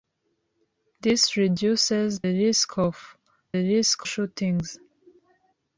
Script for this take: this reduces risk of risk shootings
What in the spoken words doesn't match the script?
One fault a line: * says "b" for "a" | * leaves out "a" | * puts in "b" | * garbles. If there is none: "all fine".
all fine